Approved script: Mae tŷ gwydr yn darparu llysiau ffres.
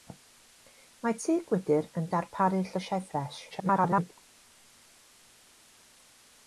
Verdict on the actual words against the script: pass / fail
fail